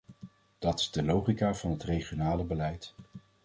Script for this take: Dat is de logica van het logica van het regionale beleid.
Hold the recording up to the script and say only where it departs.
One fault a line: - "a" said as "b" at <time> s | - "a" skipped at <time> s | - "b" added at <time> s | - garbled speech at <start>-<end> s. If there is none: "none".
- "logica van het" skipped at 1.8 s